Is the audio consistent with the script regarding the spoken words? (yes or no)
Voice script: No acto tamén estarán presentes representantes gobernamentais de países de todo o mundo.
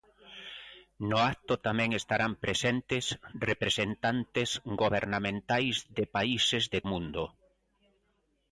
no